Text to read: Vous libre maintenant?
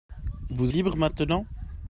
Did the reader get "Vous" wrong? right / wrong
right